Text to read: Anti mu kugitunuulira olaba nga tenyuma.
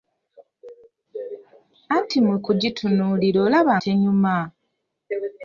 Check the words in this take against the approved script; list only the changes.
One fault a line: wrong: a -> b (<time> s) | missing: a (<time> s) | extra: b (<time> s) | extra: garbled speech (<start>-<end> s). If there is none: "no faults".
missing: nga (3.7 s)